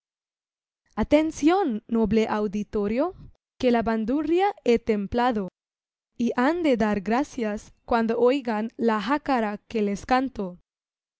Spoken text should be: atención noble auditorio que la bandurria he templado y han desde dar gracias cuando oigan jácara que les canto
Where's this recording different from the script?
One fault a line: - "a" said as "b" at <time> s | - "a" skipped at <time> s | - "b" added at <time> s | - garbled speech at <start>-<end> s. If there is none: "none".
- "desde" said as "de" at 6.6 s
- "la" added at 8.8 s